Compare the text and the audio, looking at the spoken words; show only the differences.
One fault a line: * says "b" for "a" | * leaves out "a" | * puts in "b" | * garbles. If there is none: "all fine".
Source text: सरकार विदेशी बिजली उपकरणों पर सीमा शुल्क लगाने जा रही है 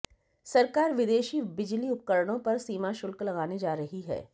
all fine